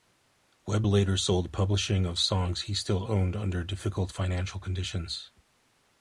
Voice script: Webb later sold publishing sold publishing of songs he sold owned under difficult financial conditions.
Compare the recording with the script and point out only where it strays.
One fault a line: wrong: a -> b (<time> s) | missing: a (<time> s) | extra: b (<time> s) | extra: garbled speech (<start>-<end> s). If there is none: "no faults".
missing: sold publishing (2.1 s)
wrong: sold -> still (2.7 s)